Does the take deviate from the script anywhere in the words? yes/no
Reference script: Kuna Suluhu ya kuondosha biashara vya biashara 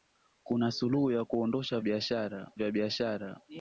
no